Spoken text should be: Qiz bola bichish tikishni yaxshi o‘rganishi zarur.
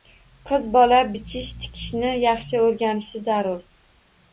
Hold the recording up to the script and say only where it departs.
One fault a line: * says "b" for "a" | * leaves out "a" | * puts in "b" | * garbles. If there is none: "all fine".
all fine